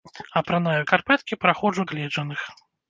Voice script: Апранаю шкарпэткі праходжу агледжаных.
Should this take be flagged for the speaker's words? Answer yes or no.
no